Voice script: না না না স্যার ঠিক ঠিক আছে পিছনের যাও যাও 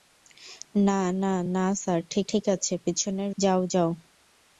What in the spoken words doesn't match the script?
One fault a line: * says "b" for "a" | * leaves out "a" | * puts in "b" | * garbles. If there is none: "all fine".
all fine